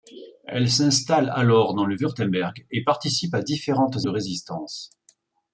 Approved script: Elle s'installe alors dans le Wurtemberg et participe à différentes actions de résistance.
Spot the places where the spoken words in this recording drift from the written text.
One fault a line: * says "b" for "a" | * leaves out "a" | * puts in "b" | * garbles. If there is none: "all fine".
* leaves out "actions"